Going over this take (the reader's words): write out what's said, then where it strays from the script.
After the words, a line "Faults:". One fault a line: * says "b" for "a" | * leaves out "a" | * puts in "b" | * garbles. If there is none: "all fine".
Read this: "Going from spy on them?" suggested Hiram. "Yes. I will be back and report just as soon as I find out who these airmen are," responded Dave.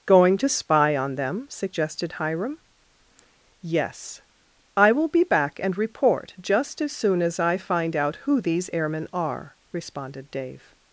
"Going to spy on them?" suggested Hiram. "Yes. I will be back and report just as soon as I find out who these airmen are," responded Dave.
Faults:
* says "to" for "from"